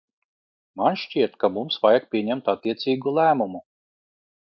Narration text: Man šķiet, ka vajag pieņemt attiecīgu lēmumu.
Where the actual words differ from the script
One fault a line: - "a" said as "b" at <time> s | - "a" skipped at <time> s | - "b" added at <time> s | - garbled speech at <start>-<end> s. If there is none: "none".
- "mums" added at 1.6 s